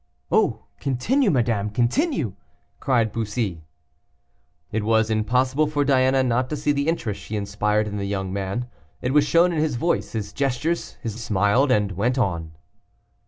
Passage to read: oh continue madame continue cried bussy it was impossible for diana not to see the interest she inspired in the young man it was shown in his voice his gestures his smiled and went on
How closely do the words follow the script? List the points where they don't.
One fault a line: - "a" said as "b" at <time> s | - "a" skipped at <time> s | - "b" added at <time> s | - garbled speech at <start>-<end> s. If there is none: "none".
none